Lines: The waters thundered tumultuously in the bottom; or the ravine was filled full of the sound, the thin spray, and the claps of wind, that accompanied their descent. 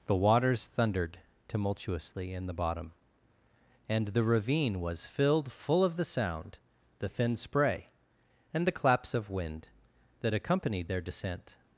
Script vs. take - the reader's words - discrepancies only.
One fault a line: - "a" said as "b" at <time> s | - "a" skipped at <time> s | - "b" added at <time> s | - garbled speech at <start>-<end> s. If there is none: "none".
- "or" said as "and" at 3.9 s